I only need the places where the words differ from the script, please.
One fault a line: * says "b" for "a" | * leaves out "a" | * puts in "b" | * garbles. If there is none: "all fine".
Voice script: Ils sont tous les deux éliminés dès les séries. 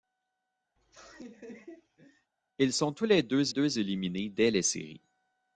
* puts in "deux"